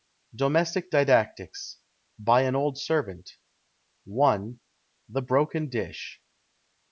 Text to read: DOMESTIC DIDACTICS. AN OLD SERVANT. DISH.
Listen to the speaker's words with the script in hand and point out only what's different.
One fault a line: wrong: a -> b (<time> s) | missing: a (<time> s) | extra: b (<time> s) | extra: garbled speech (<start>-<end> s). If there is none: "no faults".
extra: BY (2.2 s)
extra: I THE BROKEN (4.1 s)